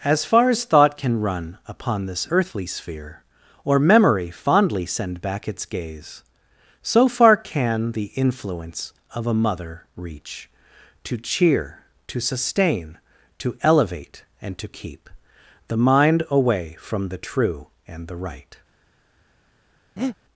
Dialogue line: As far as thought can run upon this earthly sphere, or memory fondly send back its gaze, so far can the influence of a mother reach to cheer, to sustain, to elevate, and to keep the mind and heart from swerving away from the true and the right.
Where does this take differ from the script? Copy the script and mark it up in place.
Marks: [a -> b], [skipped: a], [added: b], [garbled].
As far as thought can run upon this earthly sphere, or memory fondly send back its gaze, so far can the influence of a mother reach to cheer, to sustain, to elevate, and to keep the mind [skipped: and heart from swerving] away from the true and the right.